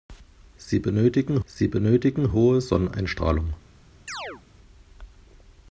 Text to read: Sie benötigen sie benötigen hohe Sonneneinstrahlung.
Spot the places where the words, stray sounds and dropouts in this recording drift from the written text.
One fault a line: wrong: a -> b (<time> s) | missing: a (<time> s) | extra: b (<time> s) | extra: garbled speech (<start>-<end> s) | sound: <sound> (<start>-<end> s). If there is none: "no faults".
sound: chirp (4.1-4.4 s)